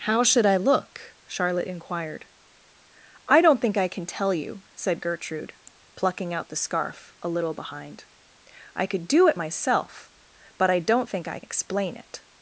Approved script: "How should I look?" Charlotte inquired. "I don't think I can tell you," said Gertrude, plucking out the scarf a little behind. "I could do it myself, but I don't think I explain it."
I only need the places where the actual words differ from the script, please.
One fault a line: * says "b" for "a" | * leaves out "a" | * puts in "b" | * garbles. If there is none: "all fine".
all fine